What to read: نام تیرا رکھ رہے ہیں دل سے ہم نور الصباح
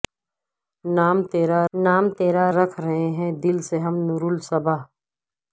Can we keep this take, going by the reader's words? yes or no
no